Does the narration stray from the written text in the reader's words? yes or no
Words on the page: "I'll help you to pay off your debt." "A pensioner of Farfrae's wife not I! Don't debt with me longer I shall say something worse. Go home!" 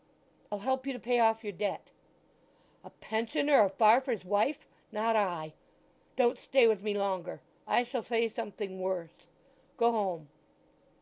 yes